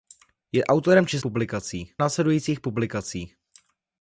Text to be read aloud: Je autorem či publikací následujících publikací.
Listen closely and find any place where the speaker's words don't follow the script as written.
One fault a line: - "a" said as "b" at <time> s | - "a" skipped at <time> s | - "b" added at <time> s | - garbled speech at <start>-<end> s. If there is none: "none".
none